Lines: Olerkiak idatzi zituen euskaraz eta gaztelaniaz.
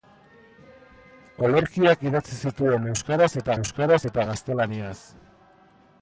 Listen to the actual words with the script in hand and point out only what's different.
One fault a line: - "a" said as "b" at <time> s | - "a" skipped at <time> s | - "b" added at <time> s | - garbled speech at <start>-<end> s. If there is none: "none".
- "euskaraz eta" added at 3.6 s